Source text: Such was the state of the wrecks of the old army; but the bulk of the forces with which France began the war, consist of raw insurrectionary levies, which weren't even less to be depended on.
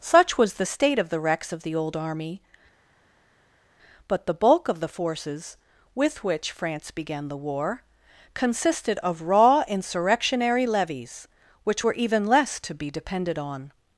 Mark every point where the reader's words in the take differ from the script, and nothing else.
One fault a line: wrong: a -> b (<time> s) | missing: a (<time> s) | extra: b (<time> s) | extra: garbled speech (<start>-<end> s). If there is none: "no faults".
wrong: consist -> consisted (8.3 s)
wrong: weren't -> were (11.8 s)